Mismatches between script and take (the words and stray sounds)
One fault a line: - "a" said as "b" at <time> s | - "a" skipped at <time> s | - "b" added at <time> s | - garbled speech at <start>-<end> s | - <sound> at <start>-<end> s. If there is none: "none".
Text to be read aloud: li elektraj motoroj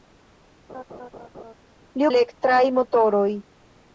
- laugh at 0.7-1.5 s